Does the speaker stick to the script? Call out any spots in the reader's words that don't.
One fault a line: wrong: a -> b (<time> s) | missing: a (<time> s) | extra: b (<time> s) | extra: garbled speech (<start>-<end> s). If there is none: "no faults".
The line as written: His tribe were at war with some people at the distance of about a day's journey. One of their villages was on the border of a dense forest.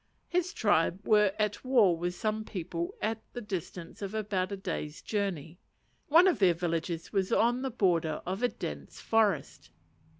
no faults